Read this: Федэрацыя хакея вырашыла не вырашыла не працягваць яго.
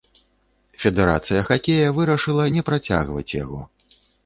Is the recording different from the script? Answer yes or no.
yes